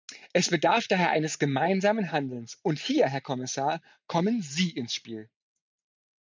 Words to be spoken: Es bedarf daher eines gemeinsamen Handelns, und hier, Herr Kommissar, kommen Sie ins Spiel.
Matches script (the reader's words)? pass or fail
pass